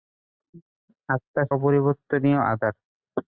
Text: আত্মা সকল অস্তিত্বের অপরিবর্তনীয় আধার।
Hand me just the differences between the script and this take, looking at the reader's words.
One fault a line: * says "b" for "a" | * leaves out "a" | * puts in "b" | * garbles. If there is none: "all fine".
* leaves out "সকল অস্তিত্বের"